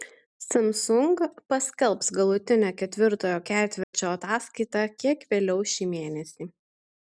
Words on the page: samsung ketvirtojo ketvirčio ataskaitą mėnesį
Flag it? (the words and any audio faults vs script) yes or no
yes